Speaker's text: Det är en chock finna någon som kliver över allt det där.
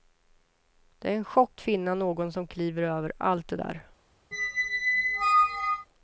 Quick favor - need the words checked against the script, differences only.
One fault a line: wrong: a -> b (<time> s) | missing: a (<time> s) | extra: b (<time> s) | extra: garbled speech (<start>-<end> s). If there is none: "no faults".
no faults